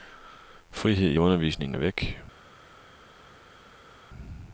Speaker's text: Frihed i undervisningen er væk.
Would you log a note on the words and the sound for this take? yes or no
no